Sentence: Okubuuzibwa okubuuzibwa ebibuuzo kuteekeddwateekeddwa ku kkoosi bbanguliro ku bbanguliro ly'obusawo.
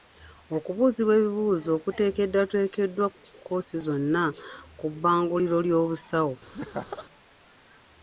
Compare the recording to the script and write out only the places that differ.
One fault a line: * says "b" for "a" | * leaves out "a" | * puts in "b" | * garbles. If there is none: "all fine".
* leaves out "okubuuzibwa"
* says "zonna" for "bbanguliro"